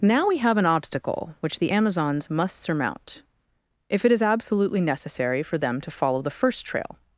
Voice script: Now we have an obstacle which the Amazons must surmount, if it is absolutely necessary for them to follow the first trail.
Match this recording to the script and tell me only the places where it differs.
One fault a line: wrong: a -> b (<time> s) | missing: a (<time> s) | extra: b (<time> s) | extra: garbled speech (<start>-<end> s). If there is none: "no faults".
no faults